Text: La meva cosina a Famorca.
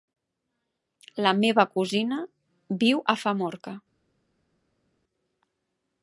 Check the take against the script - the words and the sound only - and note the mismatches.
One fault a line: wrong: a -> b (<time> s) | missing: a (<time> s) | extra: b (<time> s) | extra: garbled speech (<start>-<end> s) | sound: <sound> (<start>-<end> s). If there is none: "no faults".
extra: viu (2.9 s)